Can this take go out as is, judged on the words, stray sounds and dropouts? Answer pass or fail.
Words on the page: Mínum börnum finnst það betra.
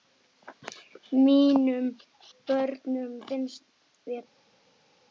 fail